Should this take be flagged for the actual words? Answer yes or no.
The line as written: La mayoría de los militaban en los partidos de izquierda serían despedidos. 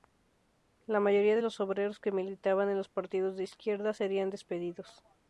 yes